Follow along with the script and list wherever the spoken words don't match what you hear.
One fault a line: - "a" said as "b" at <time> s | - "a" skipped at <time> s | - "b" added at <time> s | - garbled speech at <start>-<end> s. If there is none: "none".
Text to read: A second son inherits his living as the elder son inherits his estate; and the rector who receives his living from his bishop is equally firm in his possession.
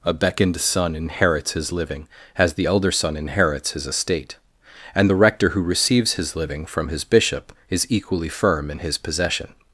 - "second" said as "beckoned" at 0.1 s